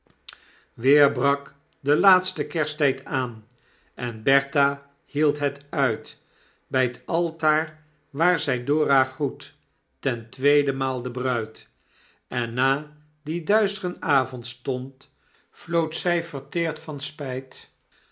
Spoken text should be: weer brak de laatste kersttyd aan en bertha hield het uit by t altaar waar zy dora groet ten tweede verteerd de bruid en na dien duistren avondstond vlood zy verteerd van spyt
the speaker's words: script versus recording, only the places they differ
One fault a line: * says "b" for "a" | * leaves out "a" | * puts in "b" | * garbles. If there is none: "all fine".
* says "maal" for "verteerd"